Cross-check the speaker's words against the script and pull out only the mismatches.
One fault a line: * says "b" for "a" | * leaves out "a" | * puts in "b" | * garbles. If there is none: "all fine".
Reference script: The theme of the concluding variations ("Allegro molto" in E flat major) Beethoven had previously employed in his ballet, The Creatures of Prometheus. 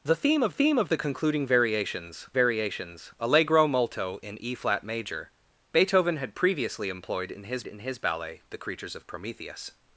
* puts in "theme of"
* puts in "variations"
* puts in "in his"